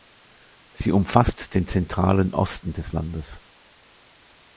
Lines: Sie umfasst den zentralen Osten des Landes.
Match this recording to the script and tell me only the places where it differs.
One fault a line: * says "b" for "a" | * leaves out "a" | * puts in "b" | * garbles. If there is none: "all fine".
all fine